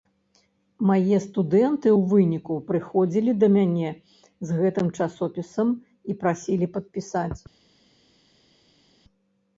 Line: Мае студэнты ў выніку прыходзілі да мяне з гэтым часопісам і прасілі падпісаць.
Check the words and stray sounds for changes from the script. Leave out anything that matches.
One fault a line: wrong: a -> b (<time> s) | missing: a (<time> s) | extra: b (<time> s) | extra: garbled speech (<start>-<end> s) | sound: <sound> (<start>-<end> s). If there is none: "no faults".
no faults